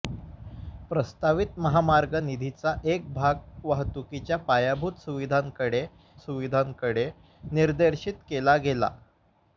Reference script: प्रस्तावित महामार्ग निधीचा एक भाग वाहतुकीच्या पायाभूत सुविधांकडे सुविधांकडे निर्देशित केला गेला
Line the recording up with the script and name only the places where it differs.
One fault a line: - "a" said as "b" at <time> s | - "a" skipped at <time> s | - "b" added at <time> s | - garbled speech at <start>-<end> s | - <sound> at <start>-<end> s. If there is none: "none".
none